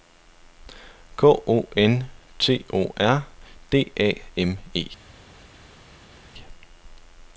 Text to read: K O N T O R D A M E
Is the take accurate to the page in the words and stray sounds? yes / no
yes